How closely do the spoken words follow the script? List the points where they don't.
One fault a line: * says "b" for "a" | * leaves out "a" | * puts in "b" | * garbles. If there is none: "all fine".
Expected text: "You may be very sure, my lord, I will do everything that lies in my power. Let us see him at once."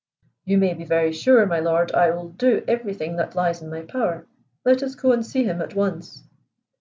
* puts in "go and"